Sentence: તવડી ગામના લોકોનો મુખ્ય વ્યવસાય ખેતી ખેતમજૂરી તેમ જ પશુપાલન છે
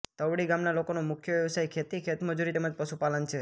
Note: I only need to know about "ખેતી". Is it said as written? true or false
true